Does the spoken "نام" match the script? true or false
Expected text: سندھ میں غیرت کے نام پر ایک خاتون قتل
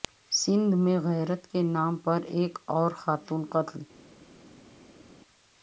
true